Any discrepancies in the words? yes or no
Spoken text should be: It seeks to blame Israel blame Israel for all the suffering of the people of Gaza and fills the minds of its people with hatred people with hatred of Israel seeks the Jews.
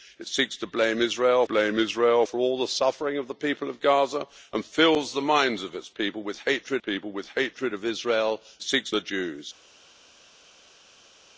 no